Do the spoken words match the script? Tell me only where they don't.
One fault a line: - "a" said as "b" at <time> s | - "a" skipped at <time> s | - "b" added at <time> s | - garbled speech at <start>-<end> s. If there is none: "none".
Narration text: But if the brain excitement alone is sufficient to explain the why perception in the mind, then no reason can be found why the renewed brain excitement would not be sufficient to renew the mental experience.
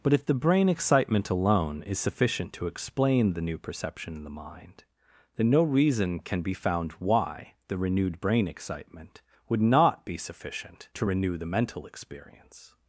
- "why" said as "new" at 3.4 s